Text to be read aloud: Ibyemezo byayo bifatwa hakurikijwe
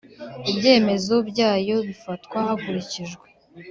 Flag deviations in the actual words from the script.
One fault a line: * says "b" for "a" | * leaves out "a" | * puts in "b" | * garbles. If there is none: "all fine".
all fine